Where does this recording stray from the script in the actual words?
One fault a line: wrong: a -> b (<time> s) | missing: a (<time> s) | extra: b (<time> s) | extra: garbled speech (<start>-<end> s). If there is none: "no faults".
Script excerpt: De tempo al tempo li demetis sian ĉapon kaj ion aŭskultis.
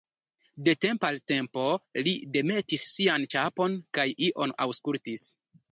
no faults